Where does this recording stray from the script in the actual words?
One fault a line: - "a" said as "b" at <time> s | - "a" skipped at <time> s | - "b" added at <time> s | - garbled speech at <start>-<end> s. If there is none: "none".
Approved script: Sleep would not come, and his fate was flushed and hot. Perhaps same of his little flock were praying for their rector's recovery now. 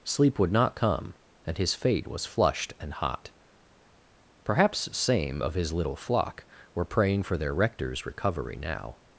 none